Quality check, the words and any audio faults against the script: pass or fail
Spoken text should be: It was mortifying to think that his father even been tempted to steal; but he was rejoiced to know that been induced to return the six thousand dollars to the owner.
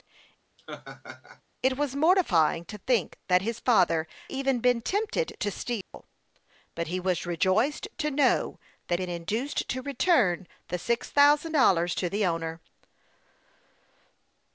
fail